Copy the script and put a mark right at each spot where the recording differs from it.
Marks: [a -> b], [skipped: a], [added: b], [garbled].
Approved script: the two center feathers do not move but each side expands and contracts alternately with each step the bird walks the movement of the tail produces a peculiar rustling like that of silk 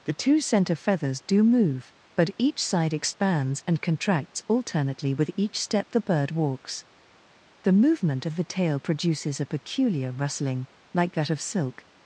the two center feathers do [skipped: not] move but each side expands and contracts alternately with each step the bird walks the movement of the tail produces a peculiar rustling like that of silk